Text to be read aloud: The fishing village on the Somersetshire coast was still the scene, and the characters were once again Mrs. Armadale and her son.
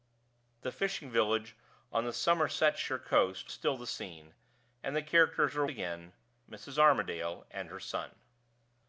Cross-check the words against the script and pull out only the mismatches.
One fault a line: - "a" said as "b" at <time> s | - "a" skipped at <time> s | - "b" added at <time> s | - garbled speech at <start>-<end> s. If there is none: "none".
- "was" skipped at 3.5 s
- "once" skipped at 5.6 s